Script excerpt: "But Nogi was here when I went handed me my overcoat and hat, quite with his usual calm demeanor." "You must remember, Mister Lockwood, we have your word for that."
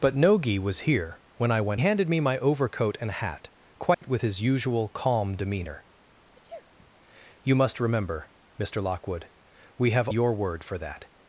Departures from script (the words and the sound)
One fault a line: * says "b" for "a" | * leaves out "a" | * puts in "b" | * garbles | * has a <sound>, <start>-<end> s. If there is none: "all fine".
* has a dropout, 3.9-4.0 s
* has a sneeze, 6.3-6.9 s